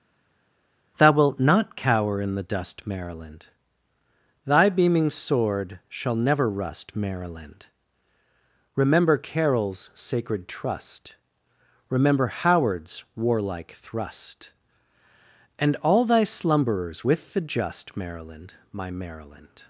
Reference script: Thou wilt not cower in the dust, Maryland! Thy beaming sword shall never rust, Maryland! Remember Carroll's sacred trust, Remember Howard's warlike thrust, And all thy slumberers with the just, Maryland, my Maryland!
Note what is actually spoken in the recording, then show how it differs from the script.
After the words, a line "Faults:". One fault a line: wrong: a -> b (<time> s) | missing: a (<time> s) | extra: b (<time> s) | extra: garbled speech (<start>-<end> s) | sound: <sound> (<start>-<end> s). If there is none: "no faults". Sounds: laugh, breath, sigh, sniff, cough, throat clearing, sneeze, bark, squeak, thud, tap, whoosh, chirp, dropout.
Thou wilt not cower in the dust, Maryland! Thy beaming sword shall never rust, Maryland! Remember Carroll's sacred trust, Remember Howard's warlike thrust, And all thy slumberers with the just, Maryland, my Maryland!
Faults:
no faults